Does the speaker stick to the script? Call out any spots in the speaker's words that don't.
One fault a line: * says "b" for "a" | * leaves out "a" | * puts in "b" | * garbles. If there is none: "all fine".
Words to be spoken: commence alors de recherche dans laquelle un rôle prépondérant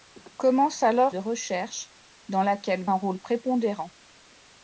all fine